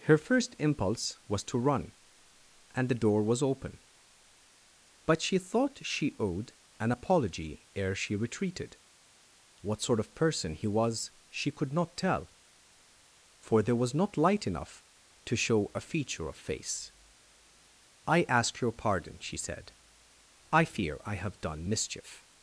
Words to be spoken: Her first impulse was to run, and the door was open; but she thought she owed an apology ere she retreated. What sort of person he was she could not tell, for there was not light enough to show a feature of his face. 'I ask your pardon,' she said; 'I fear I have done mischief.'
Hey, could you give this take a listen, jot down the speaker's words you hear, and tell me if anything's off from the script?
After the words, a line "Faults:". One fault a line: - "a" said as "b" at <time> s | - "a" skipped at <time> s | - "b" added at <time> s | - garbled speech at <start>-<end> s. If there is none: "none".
Her first impulse was to run, and the door was open; but she thought she owed an apology ere she retreated. What sort of person he was she could not tell, for there was not light enough to show a feature of face. 'I ask your pardon,' she said; 'I fear I have done mischief.'
Faults:
- "his" skipped at 16.4 s